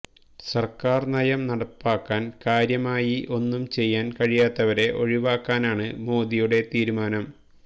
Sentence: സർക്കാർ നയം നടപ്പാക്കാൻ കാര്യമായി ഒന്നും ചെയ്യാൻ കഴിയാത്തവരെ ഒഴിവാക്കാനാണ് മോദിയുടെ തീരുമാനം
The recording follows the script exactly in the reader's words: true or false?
true